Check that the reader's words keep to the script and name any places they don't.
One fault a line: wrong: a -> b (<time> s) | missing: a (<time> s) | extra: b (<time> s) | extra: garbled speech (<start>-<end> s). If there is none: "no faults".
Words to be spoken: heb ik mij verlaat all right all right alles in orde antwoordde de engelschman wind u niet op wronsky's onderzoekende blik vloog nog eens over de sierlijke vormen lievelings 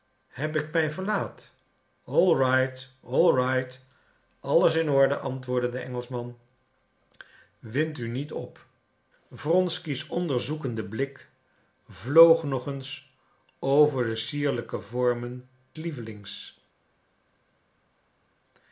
no faults